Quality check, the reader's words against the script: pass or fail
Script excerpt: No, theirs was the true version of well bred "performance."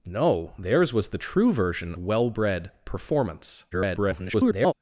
fail